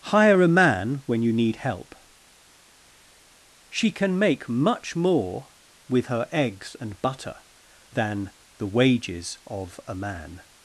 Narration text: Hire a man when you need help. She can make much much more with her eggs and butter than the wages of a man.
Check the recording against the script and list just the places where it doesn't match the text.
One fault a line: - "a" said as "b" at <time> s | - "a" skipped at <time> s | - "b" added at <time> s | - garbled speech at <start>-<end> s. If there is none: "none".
- "much" skipped at 5.0 s